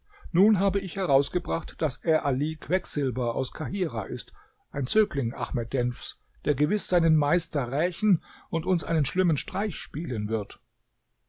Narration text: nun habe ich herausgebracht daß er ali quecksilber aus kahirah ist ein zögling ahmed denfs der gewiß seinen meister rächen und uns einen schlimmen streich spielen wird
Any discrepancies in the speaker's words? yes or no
no